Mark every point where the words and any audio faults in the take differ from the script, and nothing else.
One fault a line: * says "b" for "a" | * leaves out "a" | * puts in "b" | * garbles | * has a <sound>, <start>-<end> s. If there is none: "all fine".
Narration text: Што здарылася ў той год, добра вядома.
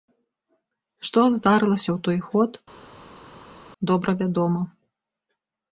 all fine